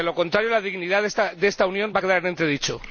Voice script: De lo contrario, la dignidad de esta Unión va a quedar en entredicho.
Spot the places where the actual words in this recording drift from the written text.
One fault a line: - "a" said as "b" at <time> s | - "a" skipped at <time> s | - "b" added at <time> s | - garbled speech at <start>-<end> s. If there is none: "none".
none